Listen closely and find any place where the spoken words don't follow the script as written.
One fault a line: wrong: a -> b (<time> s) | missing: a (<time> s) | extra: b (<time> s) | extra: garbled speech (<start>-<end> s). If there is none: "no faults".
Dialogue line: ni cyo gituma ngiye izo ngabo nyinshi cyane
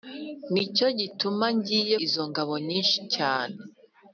no faults